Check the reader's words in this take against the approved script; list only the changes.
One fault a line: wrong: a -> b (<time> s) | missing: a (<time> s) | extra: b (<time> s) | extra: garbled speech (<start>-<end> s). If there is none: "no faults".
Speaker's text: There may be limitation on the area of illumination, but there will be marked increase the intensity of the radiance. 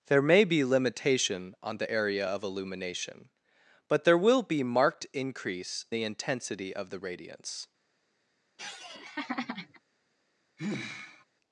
no faults